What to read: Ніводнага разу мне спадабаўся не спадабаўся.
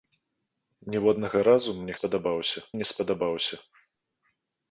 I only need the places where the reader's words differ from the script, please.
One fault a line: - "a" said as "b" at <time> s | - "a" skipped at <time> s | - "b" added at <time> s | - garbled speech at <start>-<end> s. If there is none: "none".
none